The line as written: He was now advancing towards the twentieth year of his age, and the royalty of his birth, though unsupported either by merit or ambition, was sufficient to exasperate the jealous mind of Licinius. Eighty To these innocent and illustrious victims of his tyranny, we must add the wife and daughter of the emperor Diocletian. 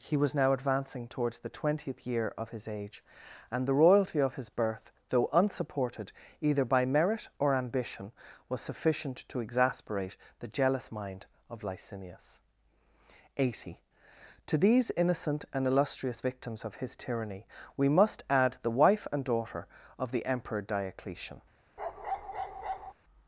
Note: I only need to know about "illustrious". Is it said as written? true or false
true